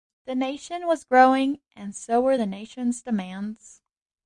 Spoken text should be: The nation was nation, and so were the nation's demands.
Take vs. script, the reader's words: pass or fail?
fail